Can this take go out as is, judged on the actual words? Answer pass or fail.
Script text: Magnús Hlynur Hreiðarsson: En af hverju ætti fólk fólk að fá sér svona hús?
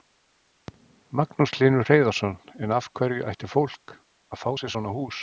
fail